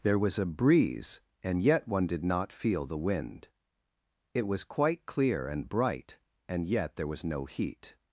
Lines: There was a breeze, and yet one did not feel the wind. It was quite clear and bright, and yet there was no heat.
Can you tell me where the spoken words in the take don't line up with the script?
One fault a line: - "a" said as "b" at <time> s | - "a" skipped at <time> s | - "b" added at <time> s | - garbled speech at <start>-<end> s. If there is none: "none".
none